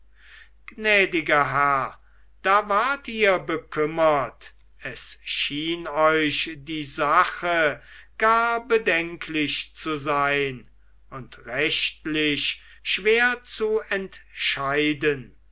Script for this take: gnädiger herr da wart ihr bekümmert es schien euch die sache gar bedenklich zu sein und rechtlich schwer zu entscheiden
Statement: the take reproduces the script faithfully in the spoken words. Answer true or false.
true